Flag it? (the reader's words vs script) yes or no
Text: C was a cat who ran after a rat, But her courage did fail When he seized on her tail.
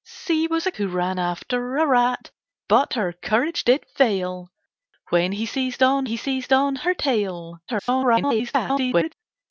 yes